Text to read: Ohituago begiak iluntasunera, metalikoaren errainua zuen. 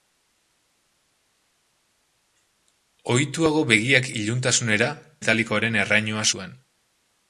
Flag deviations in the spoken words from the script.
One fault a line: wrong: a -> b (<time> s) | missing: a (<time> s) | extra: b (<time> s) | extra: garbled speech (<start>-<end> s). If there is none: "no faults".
no faults